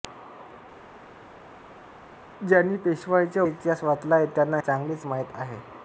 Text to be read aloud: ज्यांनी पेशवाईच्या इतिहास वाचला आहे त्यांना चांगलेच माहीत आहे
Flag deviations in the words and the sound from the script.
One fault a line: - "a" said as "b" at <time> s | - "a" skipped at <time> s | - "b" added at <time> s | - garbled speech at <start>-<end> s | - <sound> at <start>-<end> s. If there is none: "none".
none